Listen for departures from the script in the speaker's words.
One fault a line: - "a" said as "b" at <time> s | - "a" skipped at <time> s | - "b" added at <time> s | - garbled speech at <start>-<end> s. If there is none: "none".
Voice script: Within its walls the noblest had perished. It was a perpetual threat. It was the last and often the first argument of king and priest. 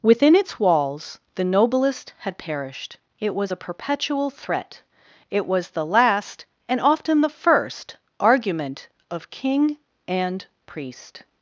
none